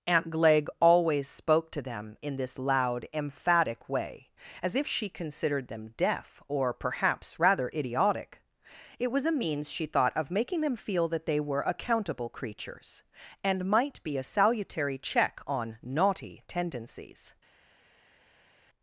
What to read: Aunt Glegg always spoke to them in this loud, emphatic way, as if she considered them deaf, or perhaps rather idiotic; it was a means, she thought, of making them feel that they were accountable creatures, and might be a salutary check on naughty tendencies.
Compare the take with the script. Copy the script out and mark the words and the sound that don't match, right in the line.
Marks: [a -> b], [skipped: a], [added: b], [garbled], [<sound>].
Aunt Glegg always spoke to them in this loud, emphatic way, as if she considered them deaf, or perhaps rather idiotic; it was a means, she thought, of making them feel that they were accountable creatures, and might be a salutary check on naughty tendencies.